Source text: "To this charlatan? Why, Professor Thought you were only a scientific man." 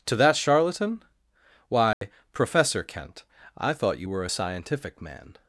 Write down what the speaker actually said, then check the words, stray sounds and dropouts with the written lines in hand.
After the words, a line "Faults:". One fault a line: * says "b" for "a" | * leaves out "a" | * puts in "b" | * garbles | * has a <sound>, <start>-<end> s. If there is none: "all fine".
"To that charlatan? Why, Professor Kent, I thought you were a scientific man."
Faults:
* says "that" for "this"
* has a dropout, 1.9-2.0 s
* puts in "Kent I"
* leaves out "only"